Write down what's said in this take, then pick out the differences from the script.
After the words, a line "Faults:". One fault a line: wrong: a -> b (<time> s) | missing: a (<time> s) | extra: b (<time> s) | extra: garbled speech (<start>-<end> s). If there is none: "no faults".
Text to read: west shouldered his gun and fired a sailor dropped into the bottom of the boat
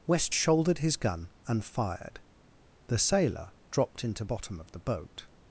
west shouldered his gun and fired the sailor dropped into bottom of the boat
Faults:
wrong: a -> the (2.9 s)
missing: the (4.2 s)